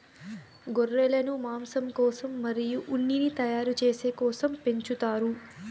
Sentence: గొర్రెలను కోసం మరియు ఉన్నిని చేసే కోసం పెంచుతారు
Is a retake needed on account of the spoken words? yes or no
yes